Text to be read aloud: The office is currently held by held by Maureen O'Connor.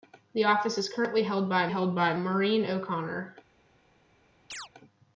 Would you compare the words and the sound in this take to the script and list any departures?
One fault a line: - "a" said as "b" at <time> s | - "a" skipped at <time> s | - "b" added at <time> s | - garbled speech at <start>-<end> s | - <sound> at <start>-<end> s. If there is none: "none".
- chirp at 4.5-4.7 s